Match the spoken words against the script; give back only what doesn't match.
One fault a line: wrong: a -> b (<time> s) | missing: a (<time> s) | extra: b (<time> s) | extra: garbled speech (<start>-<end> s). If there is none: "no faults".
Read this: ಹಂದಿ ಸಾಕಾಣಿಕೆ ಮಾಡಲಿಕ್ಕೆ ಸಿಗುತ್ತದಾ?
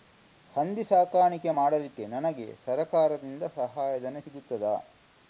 extra: ನನಗೆ ಸರಕಾರದಿಂದ ಸಹಾಯಧನ (2.1 s)